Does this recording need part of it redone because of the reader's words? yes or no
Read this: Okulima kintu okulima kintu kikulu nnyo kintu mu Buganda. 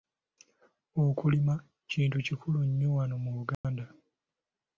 yes